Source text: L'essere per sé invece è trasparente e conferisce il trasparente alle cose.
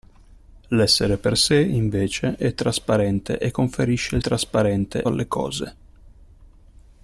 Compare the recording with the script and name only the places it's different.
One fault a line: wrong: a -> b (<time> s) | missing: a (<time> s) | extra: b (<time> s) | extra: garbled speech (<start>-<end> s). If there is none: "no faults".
no faults